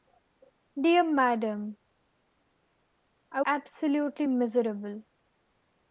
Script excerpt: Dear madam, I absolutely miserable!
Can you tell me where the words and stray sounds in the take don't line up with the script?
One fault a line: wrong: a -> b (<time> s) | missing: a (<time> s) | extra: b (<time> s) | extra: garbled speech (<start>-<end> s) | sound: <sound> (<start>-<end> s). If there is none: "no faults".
no faults